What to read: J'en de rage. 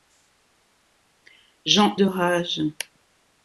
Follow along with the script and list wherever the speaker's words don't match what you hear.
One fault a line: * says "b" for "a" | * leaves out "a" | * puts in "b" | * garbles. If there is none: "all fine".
all fine